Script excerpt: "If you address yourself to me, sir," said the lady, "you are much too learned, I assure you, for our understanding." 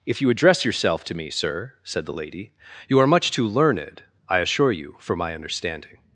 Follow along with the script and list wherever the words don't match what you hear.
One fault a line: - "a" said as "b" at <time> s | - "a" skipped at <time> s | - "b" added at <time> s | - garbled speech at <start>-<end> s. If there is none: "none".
- "our" said as "my" at 5.2 s